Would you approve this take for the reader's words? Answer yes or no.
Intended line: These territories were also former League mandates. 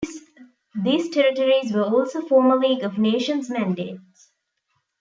no